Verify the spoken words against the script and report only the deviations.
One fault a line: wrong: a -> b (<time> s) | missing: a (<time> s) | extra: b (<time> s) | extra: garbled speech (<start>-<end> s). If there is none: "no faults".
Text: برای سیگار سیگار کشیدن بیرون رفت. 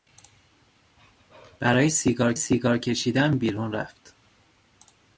no faults